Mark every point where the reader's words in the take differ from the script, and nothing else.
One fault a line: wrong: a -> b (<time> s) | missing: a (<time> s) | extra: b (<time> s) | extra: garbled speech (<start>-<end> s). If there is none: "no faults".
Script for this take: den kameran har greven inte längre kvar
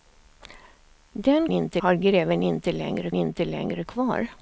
wrong: kameran -> inte (1.5 s)
extra: inte längre (3.1 s)